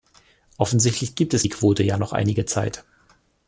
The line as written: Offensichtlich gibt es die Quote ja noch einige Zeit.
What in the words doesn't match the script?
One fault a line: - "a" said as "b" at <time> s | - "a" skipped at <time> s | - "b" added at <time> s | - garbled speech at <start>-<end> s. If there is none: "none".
none